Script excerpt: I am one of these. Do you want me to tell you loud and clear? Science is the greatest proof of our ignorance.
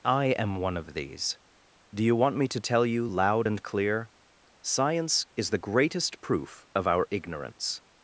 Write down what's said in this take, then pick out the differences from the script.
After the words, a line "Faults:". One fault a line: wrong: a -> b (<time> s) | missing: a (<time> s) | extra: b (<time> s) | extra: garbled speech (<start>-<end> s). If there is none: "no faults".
I am one of these. Do you want me to tell you loud and clear? Science is the greatest proof of our ignorance.
Faults:
no faults